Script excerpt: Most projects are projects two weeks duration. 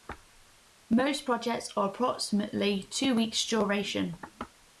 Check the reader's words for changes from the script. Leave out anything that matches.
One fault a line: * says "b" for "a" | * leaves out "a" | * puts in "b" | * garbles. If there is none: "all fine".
* says "approximately" for "projects"